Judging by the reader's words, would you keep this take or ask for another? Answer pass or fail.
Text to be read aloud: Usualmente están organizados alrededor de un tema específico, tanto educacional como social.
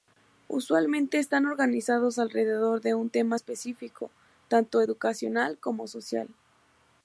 pass